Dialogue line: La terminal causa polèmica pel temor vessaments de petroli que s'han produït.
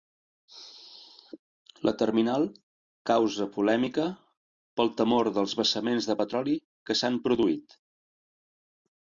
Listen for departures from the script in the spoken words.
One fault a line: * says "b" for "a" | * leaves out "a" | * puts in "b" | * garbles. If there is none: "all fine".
* puts in "dels"